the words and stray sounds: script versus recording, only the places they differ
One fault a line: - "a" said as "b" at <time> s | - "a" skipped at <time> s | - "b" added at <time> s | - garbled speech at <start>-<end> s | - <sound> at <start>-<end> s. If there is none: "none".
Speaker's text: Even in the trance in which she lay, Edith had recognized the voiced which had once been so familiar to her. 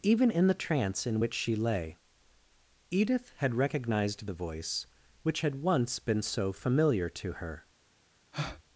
- "voiced" said as "voice" at 4.3 s
- breath at 8.3-8.6 s